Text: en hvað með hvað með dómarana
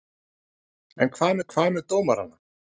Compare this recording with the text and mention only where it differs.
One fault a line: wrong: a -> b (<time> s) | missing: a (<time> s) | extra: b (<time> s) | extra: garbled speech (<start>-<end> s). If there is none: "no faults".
no faults